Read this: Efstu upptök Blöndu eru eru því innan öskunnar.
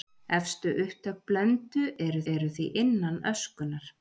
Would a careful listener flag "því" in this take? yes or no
no